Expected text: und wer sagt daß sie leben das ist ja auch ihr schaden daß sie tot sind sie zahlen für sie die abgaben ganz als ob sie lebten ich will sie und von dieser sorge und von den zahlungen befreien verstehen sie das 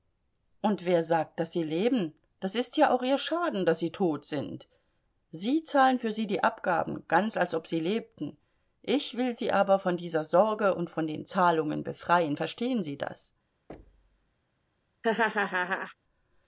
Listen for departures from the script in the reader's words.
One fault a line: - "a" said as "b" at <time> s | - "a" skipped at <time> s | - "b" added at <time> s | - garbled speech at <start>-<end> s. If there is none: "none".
- "und" said as "aber" at 9.5 s